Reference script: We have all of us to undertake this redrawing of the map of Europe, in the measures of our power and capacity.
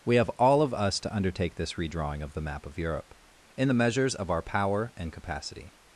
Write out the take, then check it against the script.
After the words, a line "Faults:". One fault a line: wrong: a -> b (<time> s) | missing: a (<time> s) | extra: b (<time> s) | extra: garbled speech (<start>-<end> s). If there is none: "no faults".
We have all of us to undertake this redrawing of the map of Europe, in the measures of our power and capacity.
Faults:
no faults